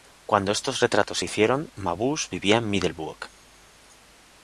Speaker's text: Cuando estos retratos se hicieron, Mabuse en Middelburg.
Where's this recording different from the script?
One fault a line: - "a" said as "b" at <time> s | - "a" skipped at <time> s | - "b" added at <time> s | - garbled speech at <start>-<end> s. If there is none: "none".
- "vivía" added at 2.3 s